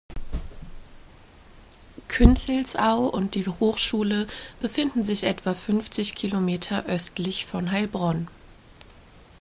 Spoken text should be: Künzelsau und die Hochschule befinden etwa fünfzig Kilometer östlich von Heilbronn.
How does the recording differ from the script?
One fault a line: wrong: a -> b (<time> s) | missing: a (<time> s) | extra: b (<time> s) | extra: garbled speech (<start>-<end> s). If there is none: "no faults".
extra: sich (5.0 s)